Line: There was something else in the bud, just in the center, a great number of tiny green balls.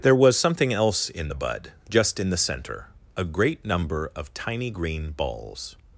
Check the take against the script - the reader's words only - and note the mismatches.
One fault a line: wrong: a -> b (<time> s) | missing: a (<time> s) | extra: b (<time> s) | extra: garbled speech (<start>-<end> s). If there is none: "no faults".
no faults